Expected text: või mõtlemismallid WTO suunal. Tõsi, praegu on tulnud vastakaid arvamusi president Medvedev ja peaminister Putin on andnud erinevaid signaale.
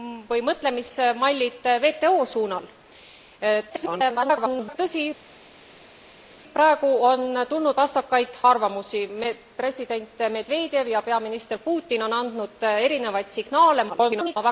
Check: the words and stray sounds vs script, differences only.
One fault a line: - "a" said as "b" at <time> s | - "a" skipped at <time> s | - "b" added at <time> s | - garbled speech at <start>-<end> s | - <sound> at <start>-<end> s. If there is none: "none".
- garbled speech at 3.7-4.8 s
- garbled speech at 13.9-14.4 s